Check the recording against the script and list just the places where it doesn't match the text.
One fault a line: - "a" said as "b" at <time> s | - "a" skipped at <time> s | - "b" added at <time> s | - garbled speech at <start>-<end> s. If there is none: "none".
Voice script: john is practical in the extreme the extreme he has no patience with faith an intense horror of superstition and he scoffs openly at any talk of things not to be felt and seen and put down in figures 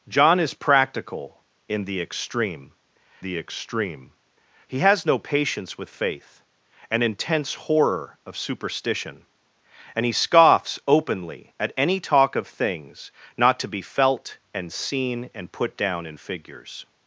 none